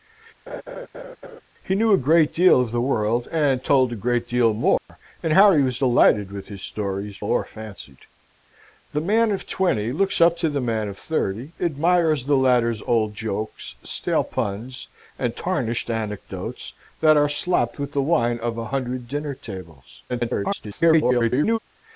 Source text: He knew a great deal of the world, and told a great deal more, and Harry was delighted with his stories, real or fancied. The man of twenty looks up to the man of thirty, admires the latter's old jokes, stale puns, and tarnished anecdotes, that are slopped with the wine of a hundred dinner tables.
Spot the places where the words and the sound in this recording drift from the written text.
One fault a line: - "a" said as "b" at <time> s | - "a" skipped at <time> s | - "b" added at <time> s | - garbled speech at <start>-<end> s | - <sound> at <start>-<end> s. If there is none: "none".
- laugh at 0.5-1.4 s
- dropout at 4.8-4.9 s
- "real" skipped at 7.2 s
- garbled speech at 20.1-21.6 s